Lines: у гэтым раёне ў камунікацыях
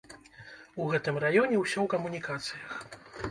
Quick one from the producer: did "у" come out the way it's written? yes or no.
yes